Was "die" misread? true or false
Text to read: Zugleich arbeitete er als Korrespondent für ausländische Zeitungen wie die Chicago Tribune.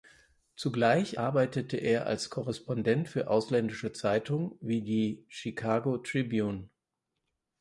false